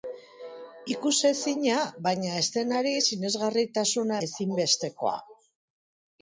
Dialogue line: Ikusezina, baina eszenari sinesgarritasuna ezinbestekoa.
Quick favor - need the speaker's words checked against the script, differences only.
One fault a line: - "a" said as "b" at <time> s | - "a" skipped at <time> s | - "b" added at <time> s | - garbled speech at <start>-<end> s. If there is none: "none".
none